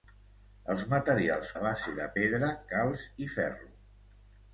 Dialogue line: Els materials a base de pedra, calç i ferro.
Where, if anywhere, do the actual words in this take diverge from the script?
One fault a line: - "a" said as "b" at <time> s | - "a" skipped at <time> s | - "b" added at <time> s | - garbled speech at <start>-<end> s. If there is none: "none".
none